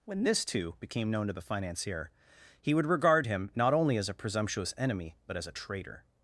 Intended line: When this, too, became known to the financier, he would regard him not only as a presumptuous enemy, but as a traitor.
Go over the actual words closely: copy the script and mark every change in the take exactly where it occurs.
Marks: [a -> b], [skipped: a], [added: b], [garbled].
When this, too, became known to the financier, he would regard him not only as a presumptuous enemy, but as a traitor.